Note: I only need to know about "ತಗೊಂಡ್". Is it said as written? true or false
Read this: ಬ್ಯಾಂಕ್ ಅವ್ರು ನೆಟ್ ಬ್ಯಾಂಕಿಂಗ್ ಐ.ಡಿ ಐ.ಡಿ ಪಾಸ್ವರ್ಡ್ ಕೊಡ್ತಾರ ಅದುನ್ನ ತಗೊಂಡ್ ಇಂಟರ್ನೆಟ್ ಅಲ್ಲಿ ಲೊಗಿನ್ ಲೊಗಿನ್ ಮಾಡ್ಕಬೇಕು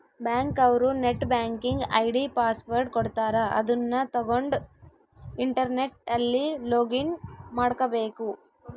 true